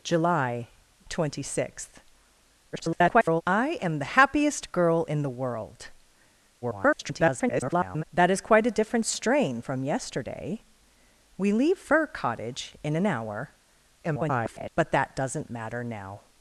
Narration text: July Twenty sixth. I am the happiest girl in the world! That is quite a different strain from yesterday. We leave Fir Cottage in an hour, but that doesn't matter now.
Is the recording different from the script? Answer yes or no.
yes